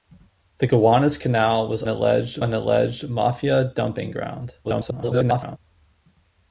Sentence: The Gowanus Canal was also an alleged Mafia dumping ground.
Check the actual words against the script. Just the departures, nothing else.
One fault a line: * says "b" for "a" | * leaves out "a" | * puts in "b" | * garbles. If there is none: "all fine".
* says "alleged" for "also"
* garbles